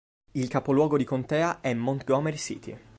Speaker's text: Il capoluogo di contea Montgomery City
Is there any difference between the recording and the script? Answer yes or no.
yes